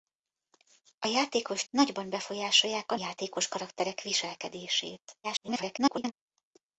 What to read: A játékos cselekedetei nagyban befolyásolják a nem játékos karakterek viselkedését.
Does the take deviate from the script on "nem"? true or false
true